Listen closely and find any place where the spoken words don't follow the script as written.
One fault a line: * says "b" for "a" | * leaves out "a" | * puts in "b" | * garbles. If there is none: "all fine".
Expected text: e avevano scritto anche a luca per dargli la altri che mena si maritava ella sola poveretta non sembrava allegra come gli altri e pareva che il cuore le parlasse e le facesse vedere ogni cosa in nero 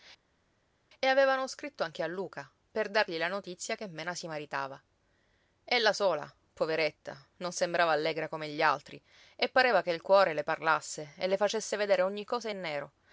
* says "notizia" for "altri"